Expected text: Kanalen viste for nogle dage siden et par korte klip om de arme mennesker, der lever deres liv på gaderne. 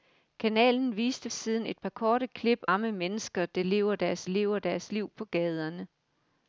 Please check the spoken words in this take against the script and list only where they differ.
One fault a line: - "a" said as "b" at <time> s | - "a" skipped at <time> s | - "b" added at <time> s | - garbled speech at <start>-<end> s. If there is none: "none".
- "for nogle dage" skipped at 1.3 s
- "om de" skipped at 2.6 s
- "lever deres" added at 4.3 s